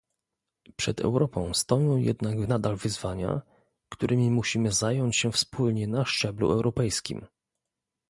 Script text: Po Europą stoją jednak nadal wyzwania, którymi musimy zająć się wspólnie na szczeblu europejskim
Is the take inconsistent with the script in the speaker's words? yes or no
yes